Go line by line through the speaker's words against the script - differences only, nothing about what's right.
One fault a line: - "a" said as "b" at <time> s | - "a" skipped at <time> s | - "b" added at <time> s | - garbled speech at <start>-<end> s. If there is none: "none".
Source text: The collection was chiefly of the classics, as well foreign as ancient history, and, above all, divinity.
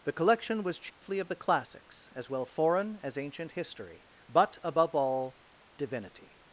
- "and" said as "but" at 4.3 s